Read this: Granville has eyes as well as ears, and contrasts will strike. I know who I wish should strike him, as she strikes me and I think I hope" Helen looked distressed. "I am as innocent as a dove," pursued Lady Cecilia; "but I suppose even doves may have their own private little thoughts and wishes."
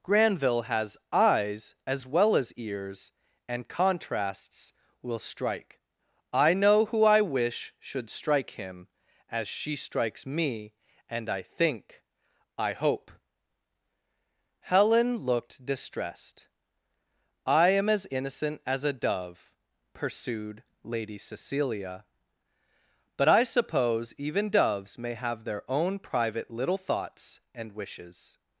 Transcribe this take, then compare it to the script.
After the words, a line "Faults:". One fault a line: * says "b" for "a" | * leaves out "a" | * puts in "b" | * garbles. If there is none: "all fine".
Granville has eyes as well as ears, and contrasts will strike. I know who I wish should strike him, as she strikes me and I think I hope" Helen looked distressed. "I am as innocent as a dove," pursued Lady Cecilia; "but I suppose even doves may have their own private little thoughts and wishes."
Faults:
all fine